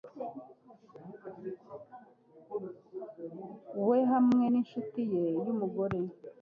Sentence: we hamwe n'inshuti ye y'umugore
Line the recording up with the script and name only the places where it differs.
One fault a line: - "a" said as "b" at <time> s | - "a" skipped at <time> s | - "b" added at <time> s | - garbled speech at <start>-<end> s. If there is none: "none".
none